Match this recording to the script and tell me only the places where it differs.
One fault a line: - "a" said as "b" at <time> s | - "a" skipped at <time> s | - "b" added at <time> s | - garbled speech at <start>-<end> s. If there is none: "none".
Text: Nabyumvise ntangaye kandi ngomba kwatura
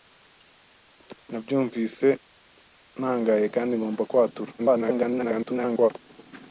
- garbled speech at 4.6-5.9 s